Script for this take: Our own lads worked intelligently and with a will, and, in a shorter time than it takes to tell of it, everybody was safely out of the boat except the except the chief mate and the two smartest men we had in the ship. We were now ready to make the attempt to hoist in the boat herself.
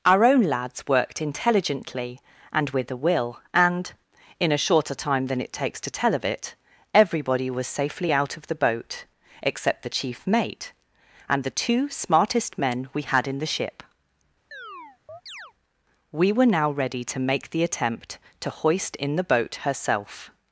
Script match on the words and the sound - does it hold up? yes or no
no